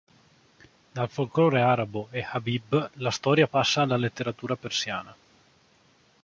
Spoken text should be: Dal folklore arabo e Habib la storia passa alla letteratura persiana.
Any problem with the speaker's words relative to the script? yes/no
no